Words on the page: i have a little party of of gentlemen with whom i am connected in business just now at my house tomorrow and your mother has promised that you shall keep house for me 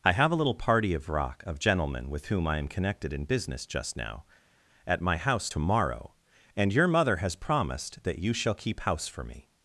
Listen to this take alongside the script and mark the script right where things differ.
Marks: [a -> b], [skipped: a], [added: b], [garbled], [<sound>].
i have a little party of [added: rock] of gentlemen with whom i am connected in business just now at my house tomorrow and your mother has promised that you shall keep house for me